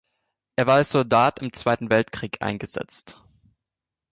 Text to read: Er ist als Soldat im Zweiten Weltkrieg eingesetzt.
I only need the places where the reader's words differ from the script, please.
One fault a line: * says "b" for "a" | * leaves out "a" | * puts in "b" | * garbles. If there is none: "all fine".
* says "war" for "ist"